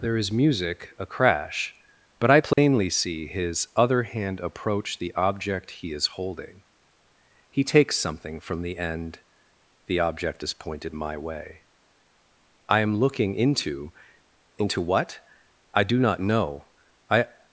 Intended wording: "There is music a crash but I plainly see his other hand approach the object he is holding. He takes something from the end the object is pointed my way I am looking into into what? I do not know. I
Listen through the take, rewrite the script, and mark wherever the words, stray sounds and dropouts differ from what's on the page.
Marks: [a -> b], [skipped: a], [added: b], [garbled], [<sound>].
"There is music a crash but I plainly [dropout] see his other hand approach the object he is holding. He takes something from the end the object is pointed my way I am looking into into what? I do not know. I